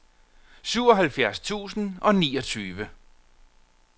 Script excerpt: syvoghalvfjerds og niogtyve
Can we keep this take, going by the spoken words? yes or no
no